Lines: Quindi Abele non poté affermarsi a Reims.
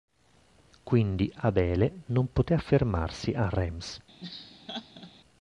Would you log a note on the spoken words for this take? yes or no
no